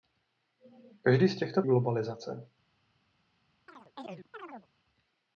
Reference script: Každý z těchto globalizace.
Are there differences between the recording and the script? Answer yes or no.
no